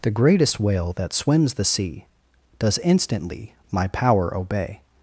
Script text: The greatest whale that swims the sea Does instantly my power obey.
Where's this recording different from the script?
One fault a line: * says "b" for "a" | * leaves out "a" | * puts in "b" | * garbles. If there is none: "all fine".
all fine